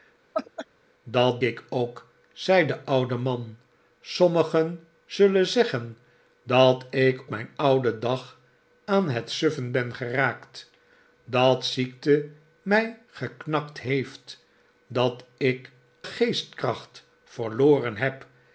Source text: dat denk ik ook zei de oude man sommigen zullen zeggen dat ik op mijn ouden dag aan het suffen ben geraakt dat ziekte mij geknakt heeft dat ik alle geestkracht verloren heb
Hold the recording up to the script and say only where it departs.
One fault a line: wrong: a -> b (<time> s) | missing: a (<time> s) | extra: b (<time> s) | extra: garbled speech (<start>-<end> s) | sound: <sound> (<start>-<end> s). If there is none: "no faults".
sound: laugh (0.3-0.7 s)
missing: denk (1.4 s)
missing: op (7.2 s)
missing: alle (15.7 s)